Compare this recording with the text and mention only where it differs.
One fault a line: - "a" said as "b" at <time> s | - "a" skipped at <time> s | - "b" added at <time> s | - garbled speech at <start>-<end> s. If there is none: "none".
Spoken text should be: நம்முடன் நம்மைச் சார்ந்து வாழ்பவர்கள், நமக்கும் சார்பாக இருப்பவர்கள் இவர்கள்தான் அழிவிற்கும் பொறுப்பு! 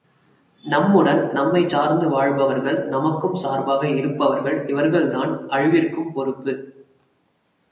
none